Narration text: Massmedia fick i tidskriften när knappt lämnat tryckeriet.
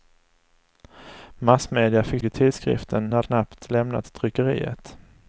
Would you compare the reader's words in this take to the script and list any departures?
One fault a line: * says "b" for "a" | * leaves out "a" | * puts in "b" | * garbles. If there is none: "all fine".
all fine